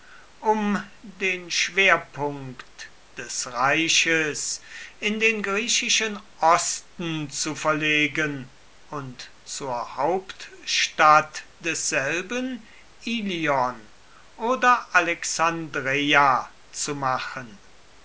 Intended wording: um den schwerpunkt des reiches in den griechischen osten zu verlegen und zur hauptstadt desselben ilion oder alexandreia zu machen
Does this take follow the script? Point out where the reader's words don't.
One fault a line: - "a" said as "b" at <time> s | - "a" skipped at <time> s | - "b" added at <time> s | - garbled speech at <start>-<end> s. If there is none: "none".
none